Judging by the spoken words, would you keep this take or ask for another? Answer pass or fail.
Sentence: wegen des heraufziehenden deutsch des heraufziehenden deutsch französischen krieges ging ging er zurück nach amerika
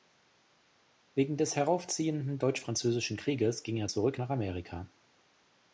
fail